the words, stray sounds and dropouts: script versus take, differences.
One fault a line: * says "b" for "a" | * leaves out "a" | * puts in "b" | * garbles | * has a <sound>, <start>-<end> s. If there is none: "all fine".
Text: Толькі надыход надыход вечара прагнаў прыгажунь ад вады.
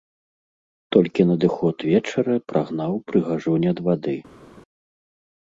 * leaves out "надыход"